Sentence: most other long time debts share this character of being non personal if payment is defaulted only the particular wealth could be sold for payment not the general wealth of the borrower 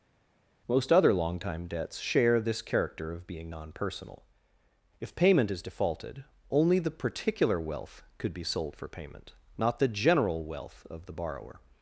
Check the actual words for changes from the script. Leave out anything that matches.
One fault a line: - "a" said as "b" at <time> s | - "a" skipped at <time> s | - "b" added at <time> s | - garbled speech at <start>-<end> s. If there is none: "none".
none